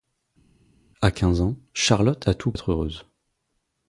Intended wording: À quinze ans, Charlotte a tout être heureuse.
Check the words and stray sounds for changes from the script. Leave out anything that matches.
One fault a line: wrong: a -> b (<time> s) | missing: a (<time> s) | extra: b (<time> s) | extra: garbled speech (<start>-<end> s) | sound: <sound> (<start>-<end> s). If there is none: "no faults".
no faults